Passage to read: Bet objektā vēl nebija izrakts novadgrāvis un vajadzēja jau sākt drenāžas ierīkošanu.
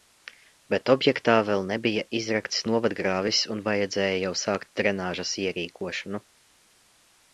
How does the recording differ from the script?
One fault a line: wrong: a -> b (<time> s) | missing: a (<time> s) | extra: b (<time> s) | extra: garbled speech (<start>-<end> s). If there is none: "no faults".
no faults